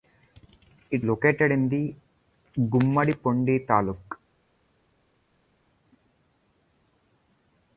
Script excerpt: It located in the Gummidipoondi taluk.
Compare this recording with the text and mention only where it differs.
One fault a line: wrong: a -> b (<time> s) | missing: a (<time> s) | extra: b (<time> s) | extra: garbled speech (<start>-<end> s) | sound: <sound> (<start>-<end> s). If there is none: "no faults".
no faults